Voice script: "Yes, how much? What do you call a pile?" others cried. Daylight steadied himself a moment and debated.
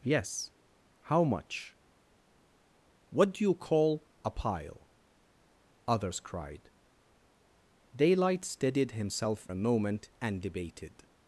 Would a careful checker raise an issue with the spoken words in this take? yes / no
no